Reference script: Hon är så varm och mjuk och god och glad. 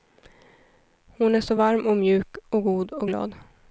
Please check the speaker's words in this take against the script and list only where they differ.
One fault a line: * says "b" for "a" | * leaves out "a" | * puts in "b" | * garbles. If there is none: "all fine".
all fine